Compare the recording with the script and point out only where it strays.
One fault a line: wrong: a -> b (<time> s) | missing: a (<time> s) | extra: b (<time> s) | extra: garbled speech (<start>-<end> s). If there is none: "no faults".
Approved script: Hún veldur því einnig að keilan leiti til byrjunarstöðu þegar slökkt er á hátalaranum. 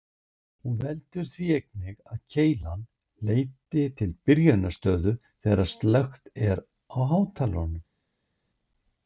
no faults